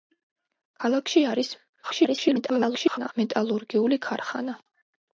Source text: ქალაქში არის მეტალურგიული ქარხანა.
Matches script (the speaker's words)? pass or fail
fail